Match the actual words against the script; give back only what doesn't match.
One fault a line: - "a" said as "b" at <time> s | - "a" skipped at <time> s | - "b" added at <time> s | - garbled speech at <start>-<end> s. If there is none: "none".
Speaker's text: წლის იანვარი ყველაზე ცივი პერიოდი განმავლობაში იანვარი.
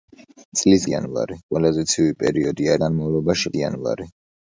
none